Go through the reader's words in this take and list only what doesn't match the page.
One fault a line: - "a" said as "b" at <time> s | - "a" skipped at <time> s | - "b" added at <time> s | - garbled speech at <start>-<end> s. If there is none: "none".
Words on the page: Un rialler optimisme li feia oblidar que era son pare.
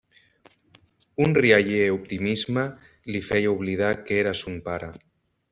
none